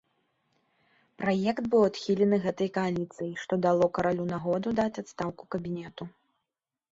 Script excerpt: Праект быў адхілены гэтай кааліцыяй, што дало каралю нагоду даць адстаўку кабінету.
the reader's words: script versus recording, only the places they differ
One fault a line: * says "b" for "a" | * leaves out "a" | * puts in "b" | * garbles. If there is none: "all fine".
all fine